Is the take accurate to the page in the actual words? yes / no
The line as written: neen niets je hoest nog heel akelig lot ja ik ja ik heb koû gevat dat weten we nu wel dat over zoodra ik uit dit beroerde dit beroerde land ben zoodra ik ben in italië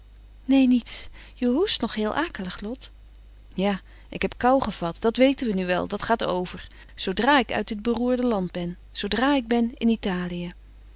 no